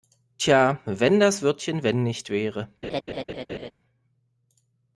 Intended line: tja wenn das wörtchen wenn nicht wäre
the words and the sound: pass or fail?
fail